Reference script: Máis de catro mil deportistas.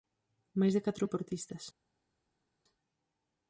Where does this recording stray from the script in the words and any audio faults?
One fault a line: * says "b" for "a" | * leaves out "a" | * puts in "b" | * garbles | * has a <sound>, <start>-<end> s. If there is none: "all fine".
* leaves out "mil"